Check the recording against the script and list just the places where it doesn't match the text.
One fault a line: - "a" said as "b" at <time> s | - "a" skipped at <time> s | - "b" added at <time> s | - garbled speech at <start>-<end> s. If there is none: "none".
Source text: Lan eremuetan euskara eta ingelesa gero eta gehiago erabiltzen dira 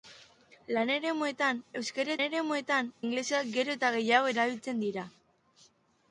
- "eta" said as "eremuetan" at 2.2 s